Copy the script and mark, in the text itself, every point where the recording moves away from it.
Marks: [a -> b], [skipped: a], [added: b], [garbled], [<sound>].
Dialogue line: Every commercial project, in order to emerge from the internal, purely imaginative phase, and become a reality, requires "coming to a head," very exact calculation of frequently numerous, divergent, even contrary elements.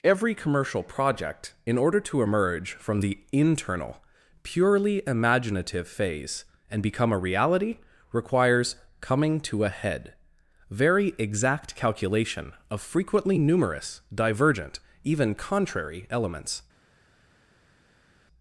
Every commercial project, in order to emerge from the internal, purely imaginative phase, and become a reality, requires "coming to a head," very exact calculation of frequently numerous, divergent, even contrary elements.